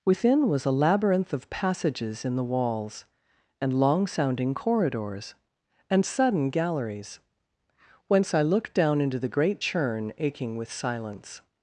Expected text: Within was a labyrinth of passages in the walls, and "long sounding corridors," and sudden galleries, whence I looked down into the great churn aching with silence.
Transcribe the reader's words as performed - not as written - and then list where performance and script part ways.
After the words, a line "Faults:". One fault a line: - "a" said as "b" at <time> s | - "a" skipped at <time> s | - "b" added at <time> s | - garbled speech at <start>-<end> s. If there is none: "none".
Within was a labyrinth of passages in the walls, and "long sounding corridors," and sudden galleries, whence I looked down into the great churn aching with silence.
Faults:
none